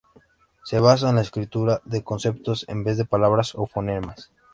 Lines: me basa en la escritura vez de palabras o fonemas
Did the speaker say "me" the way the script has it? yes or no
no